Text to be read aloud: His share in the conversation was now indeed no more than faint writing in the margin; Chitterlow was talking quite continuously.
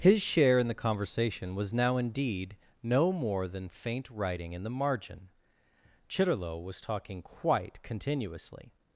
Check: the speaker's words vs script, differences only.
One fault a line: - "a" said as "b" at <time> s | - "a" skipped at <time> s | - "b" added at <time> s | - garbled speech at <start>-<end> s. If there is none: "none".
none